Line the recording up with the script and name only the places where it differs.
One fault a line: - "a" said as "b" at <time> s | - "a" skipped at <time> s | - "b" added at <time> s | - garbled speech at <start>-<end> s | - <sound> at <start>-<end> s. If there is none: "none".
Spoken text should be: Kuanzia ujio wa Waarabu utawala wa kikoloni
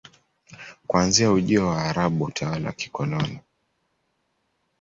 none